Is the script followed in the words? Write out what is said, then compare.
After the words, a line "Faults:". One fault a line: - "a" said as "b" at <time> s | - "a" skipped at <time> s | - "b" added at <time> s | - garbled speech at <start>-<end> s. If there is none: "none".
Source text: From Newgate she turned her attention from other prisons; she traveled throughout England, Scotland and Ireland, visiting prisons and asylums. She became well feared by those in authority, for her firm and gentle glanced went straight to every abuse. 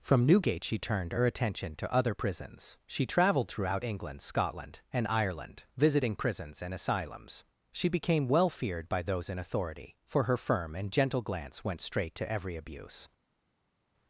From Newgate she turned her attention to other prisons; she traveled throughout England, Scotland and Ireland, visiting prisons and asylums. She became well feared by those in authority, for her firm and gentle glance went straight to every abuse.
Faults:
- "from" said as "to" at 1.8 s
- "glanced" said as "glance" at 11.2 s